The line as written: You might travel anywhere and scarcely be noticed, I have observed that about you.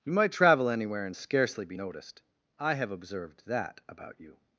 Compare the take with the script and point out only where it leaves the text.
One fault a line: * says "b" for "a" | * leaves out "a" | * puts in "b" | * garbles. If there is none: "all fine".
all fine